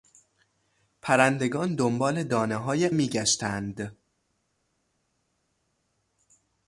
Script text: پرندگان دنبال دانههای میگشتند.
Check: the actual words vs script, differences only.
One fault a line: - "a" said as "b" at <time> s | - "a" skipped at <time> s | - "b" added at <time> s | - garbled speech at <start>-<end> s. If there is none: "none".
none